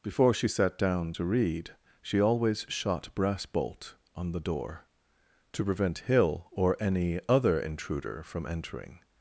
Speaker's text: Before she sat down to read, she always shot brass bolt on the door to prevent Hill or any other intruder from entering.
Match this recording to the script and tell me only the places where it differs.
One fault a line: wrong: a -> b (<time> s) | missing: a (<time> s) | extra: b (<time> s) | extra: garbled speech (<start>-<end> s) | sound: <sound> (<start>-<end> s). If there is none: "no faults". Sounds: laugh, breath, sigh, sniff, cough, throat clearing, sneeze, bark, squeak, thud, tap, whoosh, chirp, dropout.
no faults